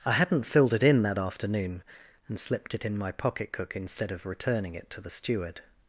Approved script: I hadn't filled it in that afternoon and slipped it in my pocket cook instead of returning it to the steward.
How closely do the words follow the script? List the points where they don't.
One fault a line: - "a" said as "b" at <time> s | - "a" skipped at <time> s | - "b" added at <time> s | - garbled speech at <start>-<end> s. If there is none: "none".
none